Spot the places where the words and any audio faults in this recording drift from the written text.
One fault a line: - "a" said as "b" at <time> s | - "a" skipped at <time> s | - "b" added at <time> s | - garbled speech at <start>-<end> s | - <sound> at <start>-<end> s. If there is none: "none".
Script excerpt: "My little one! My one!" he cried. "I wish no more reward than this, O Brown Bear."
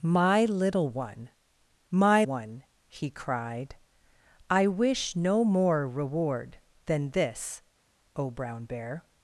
none